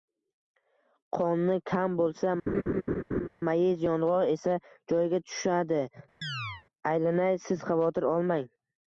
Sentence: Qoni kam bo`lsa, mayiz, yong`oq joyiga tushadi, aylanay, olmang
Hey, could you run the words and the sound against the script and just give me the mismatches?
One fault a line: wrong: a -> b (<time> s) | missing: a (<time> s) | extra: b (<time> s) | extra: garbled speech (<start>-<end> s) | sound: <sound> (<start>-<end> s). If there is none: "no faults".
sound: laugh (2.5-3.3 s)
extra: esa (4.3 s)
sound: chirp (6.2-6.6 s)
extra: siz xavotir (7.5 s)